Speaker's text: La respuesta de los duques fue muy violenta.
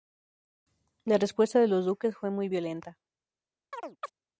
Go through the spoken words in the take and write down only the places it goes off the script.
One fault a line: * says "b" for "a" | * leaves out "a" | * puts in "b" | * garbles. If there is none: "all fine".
all fine